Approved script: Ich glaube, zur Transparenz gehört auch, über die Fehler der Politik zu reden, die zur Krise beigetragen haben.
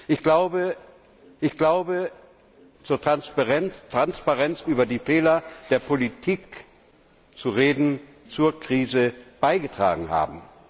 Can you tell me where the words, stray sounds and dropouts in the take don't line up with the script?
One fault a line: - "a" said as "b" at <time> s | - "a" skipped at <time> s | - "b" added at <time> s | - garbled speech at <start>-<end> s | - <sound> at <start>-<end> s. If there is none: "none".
- "ich glaube" added at 1.4 s
- "gehört auch" skipped at 4.7 s
- "die" skipped at 8.0 s